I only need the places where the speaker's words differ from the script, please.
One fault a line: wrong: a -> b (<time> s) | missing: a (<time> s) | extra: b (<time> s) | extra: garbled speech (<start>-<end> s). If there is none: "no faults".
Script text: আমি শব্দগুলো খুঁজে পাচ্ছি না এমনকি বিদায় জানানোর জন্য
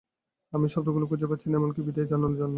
no faults